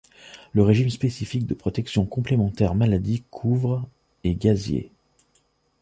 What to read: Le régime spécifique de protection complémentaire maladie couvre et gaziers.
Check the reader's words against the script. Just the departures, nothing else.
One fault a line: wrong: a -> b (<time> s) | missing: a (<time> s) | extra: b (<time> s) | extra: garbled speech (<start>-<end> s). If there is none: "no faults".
no faults